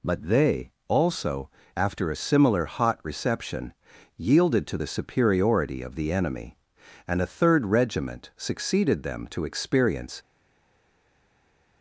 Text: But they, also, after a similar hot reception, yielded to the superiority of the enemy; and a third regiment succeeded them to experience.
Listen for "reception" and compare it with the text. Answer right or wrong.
right